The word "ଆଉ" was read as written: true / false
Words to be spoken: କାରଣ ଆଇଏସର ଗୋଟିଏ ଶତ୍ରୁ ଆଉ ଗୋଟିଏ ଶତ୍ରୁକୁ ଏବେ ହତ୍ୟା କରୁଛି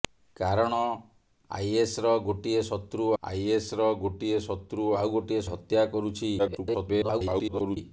false